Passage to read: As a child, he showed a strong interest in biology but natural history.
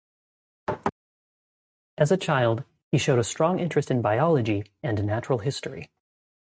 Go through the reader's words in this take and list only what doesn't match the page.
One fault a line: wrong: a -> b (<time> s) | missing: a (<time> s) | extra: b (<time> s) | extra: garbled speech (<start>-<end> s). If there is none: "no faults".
wrong: but -> and (4.8 s)